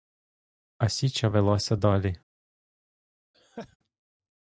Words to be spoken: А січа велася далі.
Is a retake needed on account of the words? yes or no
no